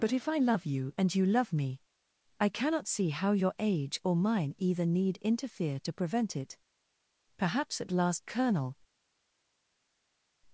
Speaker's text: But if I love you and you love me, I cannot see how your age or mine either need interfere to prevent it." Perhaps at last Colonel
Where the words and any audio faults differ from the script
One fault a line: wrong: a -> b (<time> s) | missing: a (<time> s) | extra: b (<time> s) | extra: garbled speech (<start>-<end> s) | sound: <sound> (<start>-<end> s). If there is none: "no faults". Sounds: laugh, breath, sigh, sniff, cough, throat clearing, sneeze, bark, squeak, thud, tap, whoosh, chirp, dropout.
no faults